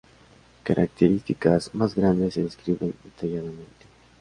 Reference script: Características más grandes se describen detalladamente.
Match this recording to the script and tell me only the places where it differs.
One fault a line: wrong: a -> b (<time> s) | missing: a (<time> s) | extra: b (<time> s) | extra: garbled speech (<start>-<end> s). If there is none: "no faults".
no faults